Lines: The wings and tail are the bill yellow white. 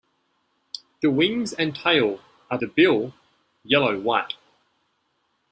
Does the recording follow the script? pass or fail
pass